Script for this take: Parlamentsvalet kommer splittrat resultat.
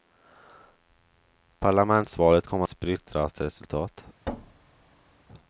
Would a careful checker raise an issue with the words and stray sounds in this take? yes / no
yes